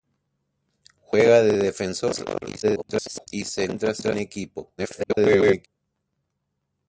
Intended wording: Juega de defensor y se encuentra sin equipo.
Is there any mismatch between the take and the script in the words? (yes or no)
yes